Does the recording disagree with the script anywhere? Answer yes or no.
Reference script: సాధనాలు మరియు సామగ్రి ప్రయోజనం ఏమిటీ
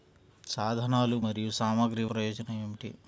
no